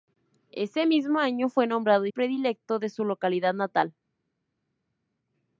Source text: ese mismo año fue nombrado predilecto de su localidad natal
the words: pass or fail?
pass